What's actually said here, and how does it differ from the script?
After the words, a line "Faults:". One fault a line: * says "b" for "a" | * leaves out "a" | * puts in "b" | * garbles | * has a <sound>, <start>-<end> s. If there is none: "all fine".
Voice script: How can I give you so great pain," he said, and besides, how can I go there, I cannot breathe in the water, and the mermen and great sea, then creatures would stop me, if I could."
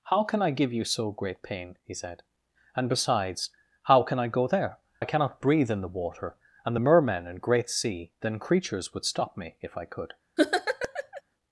How can I give you so great pain," he said, and besides, how can I go there, I cannot breathe in the water, and the mermen and great sea, then creatures would stop me, if I could."
Faults:
* has a laugh, 10.4-11.2 s